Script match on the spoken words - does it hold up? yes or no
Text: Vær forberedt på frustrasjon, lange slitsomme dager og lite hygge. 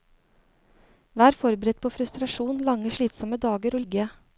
no